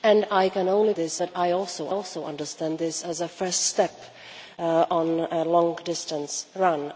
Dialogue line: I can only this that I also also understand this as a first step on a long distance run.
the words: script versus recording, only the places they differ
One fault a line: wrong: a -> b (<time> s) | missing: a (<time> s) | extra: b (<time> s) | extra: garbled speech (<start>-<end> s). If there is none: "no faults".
no faults